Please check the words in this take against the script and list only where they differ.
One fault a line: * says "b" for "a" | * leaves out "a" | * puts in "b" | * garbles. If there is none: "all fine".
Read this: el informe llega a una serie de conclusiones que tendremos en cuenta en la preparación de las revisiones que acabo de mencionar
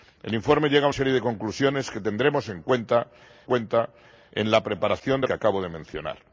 * leaves out "una"
* puts in "cuenta"
* leaves out "las revisiones"